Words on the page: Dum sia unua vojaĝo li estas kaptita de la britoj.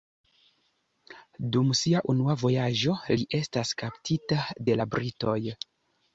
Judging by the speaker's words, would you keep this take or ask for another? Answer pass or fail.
pass